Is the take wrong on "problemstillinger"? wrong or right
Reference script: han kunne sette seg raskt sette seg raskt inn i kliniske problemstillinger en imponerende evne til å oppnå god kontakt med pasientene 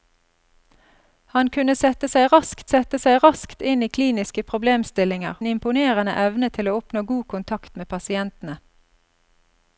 right